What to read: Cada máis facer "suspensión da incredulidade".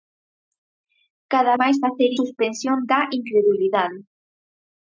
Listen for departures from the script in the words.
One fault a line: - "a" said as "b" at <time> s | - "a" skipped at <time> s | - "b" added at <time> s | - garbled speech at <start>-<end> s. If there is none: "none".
none